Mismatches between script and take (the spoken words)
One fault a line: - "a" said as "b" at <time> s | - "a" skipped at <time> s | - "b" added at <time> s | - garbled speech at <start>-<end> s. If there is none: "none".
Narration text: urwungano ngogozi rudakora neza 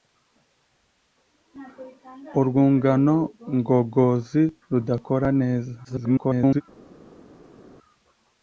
- garbled speech at 5.8-6.6 s